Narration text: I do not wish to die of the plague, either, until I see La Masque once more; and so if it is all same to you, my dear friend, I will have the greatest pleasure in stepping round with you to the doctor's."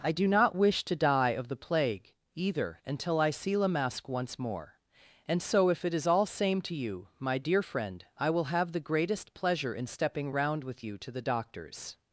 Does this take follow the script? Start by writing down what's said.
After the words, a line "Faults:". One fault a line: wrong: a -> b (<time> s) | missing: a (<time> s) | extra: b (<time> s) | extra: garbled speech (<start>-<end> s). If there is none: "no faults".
I do not wish to die of the plague, either, until I see La Masque once more; and so if it is all same to you, my dear friend, I will have the greatest pleasure in stepping round with you to the doctor's."
Faults:
no faults